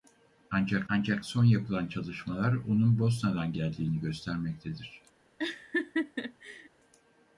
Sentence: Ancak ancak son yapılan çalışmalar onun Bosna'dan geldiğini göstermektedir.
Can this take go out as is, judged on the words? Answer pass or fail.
pass